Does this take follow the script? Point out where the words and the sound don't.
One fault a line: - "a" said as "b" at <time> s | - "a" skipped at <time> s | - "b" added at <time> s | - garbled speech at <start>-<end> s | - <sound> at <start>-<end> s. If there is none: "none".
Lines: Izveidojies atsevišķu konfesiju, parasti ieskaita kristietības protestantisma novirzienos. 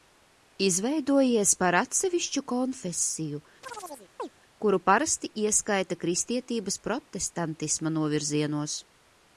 - "par" added at 1.6 s
- chirp at 3.6-4.3 s
- "kuru" added at 4.6 s